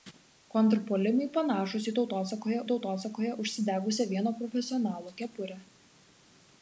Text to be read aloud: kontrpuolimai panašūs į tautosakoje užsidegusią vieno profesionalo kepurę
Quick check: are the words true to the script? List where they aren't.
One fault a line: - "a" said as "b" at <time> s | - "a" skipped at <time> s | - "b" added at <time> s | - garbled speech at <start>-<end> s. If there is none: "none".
- "tautosakoje" added at 2.7 s